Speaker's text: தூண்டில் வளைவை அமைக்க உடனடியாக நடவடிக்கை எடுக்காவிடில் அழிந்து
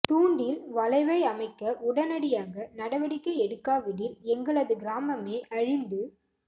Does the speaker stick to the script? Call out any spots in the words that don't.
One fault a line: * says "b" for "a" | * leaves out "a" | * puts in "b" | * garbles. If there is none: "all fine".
* puts in "எங்களது கிராமமே"